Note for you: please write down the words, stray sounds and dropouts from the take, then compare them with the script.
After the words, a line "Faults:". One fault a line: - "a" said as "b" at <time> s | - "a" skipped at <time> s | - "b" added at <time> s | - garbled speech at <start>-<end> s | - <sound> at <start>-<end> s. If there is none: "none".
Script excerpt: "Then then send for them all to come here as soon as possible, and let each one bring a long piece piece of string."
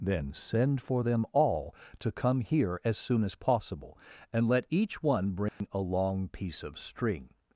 "Then send for them all to come here as soon as possible, and let each one bring a long piece of string."
Faults:
- "then" skipped at 0.3 s
- dropout at 5.5-5.6 s
- "piece" skipped at 6.6 s